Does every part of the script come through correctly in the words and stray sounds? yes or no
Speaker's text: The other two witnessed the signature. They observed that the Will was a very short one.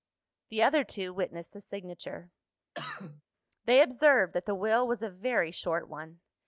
no